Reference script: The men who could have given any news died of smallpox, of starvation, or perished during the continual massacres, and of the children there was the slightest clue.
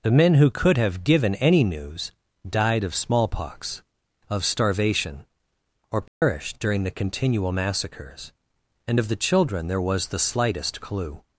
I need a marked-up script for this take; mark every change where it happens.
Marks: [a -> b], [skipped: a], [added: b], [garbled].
The men who could have given any news died of smallpox, of starvation, or perished during the continual massacres, and of the children there was the slightest clue.